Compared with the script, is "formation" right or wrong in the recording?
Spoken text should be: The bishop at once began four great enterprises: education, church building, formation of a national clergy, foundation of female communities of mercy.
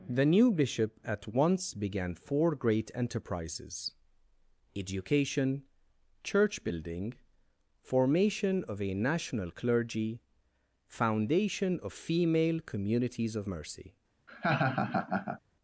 right